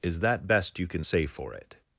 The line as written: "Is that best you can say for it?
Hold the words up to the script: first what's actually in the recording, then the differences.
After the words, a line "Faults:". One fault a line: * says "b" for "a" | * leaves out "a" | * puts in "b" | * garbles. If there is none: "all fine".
"Is that best you can say for it?
Faults:
all fine